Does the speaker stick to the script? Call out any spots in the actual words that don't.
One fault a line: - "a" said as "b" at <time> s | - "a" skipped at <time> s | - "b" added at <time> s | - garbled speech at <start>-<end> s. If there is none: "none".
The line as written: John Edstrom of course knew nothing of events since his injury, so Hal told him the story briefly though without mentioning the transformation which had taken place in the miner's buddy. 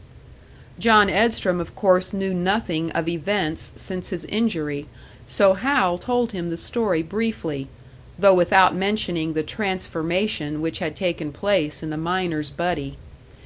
none